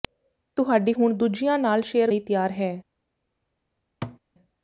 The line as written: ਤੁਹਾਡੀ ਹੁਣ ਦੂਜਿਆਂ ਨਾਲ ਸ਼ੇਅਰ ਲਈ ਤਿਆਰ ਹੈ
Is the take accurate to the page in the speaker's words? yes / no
yes